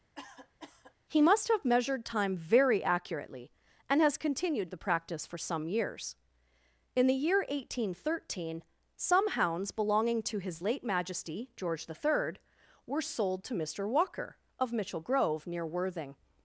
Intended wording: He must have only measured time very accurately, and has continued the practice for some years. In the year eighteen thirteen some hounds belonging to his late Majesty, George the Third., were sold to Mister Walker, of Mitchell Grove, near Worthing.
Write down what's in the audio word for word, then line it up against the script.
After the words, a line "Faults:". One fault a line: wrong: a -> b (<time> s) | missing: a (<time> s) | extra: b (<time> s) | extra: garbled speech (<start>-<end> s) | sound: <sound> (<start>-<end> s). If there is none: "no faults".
He must have measured time very accurately, and has continued the practice for some years. In the year eighteen thirteen some hounds belonging to his late Majesty, George the Third., were sold to Mister Walker, of Mitchell Grove, near Worthing.
Faults:
sound: cough (0.2-0.9 s)
missing: only (1.6 s)